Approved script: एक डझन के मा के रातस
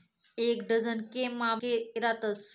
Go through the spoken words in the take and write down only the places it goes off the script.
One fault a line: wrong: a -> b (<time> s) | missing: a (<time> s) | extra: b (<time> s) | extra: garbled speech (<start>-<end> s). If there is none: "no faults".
no faults